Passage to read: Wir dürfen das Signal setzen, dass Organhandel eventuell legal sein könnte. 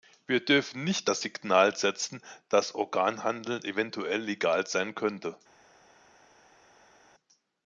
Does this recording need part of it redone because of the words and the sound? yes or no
yes